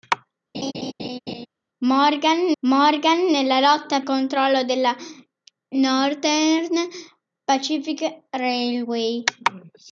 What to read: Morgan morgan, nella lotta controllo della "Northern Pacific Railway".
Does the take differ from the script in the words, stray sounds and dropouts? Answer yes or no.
yes